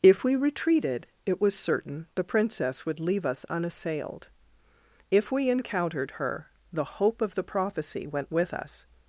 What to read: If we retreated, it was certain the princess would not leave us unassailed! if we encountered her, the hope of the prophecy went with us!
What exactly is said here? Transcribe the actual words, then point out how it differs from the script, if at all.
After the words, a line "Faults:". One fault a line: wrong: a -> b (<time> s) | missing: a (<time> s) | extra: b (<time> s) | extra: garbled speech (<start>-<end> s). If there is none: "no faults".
If we retreated, it was certain the princess would leave us unassailed! if we encountered her, the hope of the prophecy went with us!
Faults:
missing: not (3.0 s)